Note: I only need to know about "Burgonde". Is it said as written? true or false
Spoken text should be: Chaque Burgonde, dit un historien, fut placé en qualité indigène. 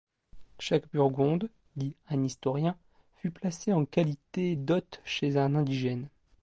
true